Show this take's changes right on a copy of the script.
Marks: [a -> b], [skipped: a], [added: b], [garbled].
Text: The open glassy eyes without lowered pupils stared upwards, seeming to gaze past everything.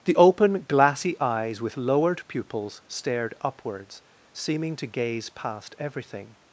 The open glassy eyes [without -> with] lowered pupils stared upwards, seeming to gaze past everything.